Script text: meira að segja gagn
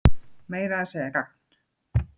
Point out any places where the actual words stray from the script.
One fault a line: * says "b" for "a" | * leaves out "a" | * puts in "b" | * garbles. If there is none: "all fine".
all fine